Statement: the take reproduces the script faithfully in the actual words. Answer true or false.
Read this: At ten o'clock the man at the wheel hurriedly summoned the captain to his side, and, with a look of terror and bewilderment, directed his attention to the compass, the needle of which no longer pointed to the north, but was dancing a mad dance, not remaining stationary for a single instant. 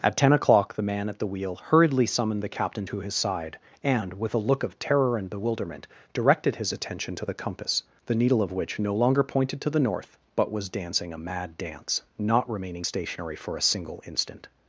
true